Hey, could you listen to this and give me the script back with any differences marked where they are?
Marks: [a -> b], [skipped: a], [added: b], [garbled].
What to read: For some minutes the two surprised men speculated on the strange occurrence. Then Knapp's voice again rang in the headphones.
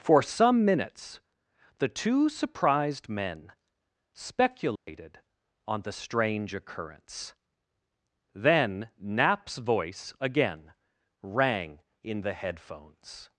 For some minutes the two surprised men speculated on the strange occurrence. Then Knapp's voice again rang in the headphones.